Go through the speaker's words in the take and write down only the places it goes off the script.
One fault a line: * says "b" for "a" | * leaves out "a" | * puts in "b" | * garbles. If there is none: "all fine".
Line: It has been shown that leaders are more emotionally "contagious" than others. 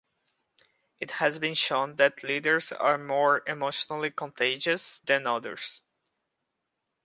all fine